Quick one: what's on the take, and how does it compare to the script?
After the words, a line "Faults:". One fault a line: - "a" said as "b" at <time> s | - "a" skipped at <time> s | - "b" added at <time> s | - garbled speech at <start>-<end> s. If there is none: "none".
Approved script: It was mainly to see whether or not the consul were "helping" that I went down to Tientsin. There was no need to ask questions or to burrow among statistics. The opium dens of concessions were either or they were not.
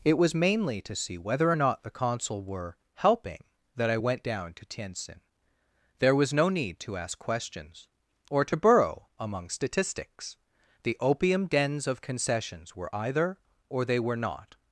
It was mainly to see whether or not the consul were "helping" that I went down to Tientsin. There was no need to ask questions or to burrow among statistics. The opium dens of concessions were either or they were not.
Faults:
none